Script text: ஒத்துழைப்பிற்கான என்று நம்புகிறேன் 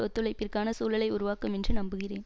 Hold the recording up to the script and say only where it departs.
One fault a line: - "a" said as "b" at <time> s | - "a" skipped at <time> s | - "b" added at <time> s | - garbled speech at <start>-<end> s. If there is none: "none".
- "சூழலை உருவாக்கும்" added at 0.7 s